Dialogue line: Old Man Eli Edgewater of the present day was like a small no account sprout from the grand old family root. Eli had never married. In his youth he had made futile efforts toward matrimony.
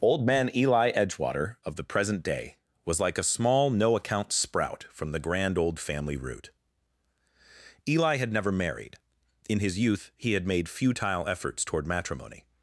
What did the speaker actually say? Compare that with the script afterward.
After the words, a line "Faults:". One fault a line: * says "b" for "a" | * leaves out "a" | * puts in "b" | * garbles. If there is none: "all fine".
Old Man Eli Edgewater of the present day was like a small no account sprout from the grand old family root. Eli had never married. In his youth he had made futile efforts toward matrimony.
Faults:
all fine